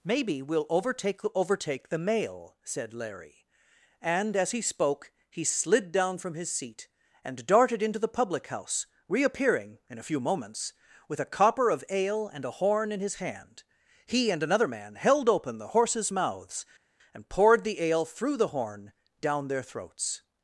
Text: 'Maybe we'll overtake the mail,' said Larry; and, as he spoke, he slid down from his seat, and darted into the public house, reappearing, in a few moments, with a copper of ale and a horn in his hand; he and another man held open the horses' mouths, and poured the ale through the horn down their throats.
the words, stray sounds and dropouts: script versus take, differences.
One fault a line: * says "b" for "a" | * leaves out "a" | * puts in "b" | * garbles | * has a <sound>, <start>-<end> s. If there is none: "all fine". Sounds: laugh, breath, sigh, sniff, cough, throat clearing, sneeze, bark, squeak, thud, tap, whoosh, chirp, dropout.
* puts in "overtake"